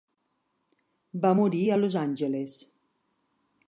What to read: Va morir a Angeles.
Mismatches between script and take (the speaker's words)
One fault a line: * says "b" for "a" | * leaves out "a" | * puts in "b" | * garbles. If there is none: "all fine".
* puts in "Los"